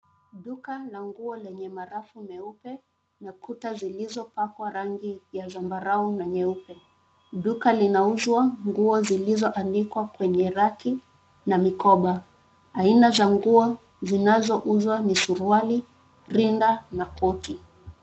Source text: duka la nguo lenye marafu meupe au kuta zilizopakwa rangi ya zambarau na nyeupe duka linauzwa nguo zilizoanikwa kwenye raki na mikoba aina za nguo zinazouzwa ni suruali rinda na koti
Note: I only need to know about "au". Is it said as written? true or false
false